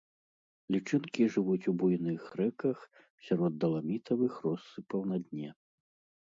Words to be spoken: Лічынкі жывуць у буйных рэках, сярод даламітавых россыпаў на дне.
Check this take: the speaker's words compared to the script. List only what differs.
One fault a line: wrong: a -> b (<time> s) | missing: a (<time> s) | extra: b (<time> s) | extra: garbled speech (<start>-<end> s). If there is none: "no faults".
no faults